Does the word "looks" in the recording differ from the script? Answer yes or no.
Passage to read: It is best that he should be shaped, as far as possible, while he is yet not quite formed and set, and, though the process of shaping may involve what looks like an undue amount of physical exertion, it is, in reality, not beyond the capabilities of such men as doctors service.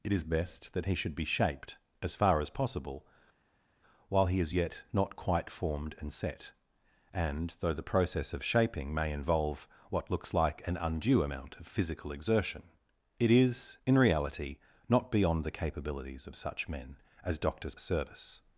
no